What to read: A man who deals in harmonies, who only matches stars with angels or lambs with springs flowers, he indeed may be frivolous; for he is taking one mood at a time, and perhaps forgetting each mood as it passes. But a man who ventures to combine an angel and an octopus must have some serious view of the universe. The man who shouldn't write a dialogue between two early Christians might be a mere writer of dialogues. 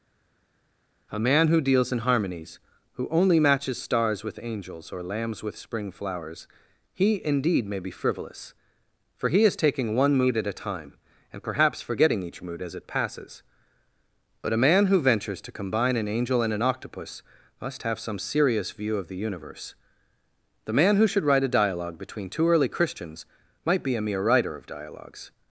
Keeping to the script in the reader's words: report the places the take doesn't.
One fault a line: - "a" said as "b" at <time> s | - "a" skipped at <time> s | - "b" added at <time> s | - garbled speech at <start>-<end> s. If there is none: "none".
- "springs" said as "spring" at 5.6 s
- "shouldn't" said as "should" at 21.1 s